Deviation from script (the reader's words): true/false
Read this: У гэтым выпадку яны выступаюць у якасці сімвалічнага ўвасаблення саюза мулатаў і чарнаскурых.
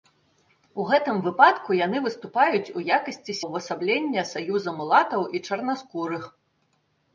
true